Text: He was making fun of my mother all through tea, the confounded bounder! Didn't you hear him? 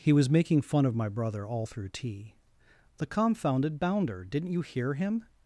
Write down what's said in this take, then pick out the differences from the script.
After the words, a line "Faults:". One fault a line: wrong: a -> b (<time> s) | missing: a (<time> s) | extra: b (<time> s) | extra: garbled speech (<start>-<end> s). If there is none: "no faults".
He was making fun of my brother all through tea, the confounded bounder! Didn't you hear him?
Faults:
wrong: mother -> brother (1.1 s)